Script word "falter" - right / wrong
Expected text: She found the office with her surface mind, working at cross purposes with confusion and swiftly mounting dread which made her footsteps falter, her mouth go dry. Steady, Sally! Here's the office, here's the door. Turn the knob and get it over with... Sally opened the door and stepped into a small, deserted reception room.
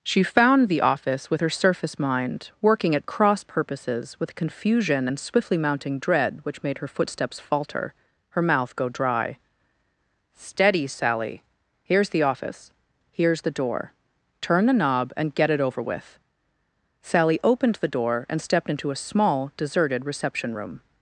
right